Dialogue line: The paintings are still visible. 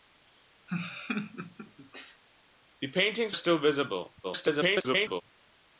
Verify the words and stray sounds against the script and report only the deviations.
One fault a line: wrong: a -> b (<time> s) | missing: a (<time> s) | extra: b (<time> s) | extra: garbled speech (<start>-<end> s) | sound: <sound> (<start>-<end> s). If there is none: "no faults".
sound: laugh (0.7-2.2 s)
missing: are (3.4 s)
extra: garbled speech (4.2-5.2 s)